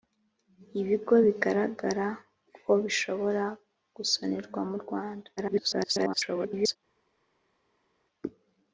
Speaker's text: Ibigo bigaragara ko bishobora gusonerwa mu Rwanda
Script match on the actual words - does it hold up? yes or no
no